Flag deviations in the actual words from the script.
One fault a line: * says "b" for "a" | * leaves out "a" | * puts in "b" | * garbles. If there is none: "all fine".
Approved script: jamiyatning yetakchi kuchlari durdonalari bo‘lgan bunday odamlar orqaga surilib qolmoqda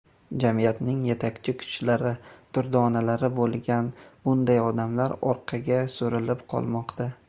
all fine